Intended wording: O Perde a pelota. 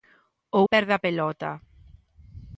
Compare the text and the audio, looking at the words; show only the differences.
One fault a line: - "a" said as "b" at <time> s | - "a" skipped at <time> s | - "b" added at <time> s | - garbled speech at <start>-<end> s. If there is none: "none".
none